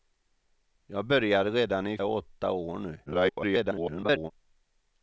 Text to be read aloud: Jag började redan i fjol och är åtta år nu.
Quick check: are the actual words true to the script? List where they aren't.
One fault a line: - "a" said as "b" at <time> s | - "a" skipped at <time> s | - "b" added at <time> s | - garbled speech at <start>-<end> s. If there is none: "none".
- "fjol och" skipped at 2.0 s
- garbled speech at 3.1-4.3 s